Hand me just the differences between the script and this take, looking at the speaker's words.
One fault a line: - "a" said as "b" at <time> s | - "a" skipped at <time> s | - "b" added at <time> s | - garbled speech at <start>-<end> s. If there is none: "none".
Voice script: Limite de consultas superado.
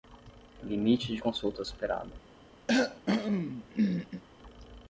none